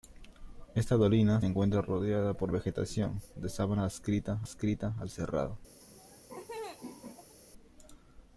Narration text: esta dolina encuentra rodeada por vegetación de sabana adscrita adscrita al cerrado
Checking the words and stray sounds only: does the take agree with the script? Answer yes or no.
no